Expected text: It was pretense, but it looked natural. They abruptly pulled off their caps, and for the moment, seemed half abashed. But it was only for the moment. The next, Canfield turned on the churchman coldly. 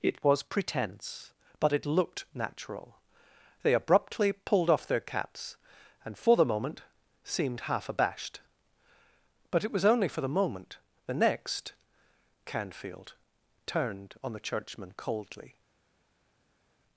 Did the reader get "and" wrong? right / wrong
right